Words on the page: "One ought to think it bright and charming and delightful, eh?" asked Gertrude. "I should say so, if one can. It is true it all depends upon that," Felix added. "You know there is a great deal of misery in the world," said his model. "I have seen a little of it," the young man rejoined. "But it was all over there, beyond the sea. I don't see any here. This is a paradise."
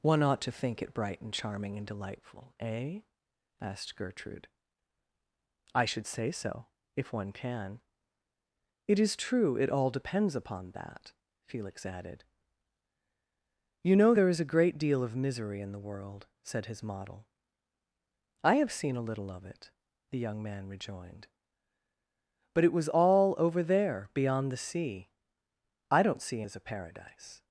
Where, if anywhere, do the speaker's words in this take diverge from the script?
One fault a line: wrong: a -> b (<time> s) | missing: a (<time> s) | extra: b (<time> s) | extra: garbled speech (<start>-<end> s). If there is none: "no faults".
missing: any here This (26.4 s)